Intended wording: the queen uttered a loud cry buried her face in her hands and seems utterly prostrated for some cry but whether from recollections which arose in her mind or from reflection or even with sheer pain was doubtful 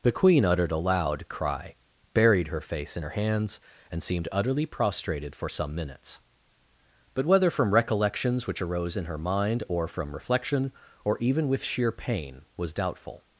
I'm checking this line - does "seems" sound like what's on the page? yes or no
no